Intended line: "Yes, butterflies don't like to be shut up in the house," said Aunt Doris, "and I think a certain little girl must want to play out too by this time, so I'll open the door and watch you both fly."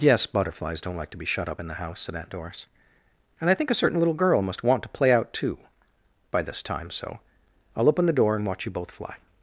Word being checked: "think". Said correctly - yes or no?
yes